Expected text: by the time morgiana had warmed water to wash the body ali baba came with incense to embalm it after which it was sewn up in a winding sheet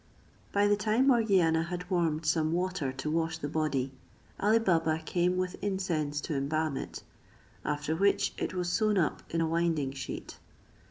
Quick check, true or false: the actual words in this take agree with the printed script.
false